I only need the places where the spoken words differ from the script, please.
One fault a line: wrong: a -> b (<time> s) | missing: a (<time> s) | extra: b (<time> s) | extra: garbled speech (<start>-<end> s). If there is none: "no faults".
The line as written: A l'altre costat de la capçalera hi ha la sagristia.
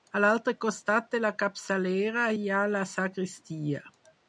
no faults